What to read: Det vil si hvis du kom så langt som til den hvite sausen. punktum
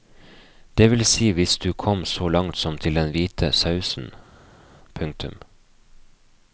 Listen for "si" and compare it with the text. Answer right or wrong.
right